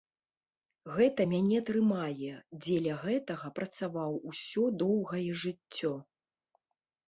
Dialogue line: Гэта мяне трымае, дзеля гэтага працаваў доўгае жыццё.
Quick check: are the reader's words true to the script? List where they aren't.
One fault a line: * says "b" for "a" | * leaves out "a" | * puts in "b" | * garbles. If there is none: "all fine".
* puts in "усё"